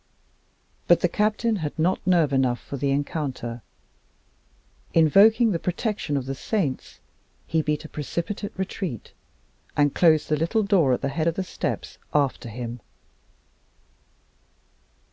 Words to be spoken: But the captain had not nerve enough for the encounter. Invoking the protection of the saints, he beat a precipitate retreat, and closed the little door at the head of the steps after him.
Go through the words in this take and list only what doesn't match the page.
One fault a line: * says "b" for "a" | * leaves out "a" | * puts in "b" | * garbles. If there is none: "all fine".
all fine